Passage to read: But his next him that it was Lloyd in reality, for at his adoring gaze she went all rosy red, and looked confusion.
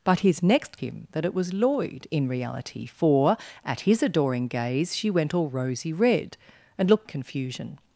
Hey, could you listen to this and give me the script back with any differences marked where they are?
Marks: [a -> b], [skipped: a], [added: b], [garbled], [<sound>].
But his next him that it was Lloyd in reality, for at his adoring gaze she went all rosy red, and looked confusion.